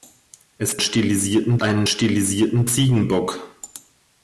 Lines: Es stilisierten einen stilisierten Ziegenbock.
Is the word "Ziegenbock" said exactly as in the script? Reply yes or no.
yes